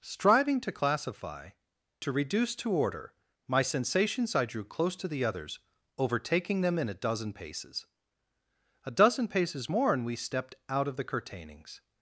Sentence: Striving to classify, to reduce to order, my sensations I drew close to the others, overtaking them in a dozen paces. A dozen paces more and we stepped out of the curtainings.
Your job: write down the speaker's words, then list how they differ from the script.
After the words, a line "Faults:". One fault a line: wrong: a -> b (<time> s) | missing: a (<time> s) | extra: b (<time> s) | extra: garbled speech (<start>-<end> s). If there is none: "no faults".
Striving to classify, to reduce to order, my sensations I drew close to the others, overtaking them in a dozen paces. A dozen paces more and we stepped out of the curtainings.
Faults:
no faults